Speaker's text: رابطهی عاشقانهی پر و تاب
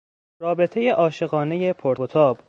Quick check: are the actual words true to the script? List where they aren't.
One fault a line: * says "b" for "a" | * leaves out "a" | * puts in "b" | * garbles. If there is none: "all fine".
all fine